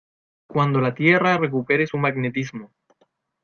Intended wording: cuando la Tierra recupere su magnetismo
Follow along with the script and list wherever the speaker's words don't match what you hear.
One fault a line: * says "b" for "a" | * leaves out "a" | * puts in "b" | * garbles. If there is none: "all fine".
all fine